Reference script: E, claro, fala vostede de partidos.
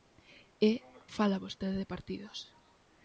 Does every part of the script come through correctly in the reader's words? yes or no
no